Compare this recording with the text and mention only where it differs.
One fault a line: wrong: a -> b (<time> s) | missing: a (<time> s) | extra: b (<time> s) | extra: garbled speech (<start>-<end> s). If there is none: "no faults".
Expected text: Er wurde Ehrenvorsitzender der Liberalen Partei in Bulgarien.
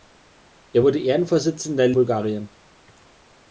missing: Liberalen Partei in (1.9 s)